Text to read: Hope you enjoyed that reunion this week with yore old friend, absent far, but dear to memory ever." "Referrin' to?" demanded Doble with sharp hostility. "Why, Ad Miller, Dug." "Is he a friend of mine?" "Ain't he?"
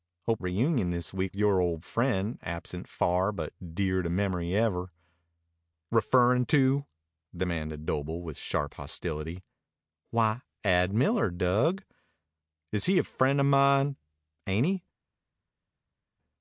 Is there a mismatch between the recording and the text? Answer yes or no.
yes